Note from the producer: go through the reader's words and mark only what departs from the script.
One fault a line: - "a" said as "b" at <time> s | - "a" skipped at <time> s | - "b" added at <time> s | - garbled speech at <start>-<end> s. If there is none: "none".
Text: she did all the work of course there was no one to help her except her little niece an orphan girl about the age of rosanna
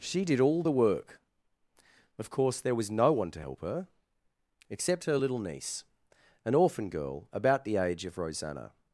none